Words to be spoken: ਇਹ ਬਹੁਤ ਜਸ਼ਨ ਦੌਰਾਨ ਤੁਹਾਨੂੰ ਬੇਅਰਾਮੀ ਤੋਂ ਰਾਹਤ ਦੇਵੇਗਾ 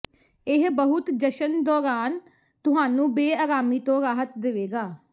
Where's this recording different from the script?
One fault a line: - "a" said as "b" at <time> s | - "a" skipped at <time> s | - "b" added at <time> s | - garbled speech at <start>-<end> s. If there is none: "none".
none